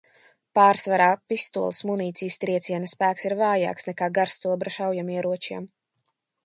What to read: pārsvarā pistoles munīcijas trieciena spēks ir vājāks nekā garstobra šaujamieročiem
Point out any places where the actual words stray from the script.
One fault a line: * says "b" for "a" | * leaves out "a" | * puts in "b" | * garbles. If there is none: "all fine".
all fine